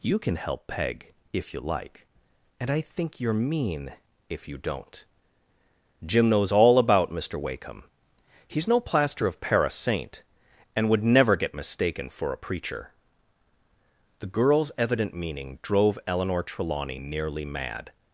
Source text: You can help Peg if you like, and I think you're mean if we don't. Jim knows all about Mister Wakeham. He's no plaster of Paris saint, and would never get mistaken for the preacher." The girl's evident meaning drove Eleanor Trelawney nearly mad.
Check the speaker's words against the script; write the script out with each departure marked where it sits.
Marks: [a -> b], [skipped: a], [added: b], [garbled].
You can help Peg if you like, and I think you're mean if [we -> you] don't. Jim knows all about Mister Wakeham. He's no plaster of Paris saint, and would never get mistaken for [the -> a] preacher." The girl's evident meaning drove Eleanor Trelawney nearly mad.